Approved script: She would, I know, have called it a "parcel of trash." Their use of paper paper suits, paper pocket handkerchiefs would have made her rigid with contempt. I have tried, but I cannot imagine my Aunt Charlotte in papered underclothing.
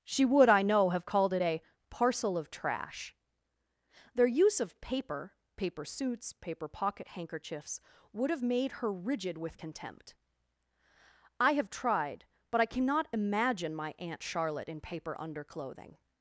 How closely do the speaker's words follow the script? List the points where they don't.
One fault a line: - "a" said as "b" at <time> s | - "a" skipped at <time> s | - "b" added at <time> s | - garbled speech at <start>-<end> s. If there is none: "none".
- "papered" said as "paper" at 14.8 s